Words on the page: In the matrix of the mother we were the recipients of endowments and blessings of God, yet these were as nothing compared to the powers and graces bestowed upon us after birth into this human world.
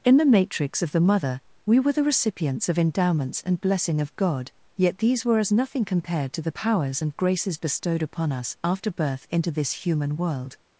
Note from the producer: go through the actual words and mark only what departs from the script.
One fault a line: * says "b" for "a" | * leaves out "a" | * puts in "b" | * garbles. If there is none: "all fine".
* says "blessing" for "blessings"